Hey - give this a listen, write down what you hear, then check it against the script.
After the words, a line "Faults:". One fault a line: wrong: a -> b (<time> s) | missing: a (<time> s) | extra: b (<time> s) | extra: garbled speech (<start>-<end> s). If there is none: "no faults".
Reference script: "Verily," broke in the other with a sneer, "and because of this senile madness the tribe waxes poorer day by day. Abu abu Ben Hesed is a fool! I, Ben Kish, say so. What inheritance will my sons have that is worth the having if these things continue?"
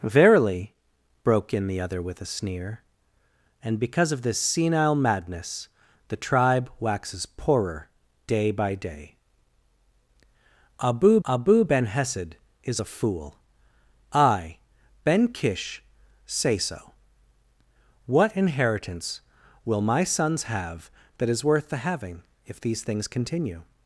"Verily," broke in the other with a sneer, "and because of this senile madness the tribe waxes poorer day by day. Abu abu Ben Hesed is a fool! I, Ben Kish, say so. What inheritance will my sons have that is worth the having if these things continue?"
Faults:
no faults